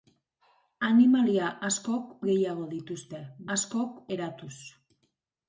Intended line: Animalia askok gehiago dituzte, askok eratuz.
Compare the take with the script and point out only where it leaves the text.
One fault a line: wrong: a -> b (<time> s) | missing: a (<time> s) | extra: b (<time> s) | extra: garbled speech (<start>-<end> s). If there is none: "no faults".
no faults